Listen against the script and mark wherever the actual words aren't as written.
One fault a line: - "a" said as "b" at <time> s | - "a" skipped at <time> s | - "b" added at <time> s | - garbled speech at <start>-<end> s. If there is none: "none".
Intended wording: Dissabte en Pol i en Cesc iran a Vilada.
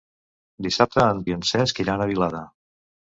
- "Pol" skipped at 1.2 s